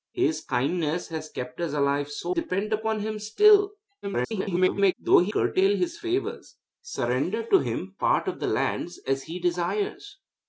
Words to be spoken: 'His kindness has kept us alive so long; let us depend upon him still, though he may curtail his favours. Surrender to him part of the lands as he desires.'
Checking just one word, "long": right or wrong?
wrong